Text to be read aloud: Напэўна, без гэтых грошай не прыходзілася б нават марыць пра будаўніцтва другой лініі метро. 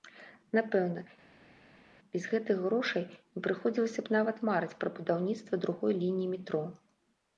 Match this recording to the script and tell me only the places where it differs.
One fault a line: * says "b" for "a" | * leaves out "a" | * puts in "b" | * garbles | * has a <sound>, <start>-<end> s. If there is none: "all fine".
all fine